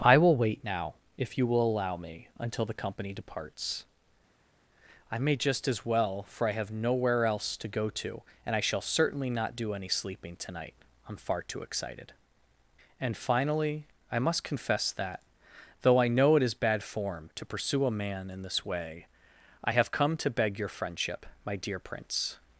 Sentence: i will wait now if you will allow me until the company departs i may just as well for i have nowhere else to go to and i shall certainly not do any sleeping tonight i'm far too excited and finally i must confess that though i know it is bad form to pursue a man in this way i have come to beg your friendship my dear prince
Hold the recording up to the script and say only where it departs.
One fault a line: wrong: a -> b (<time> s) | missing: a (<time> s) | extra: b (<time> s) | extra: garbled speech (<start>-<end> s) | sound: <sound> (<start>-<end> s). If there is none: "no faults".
no faults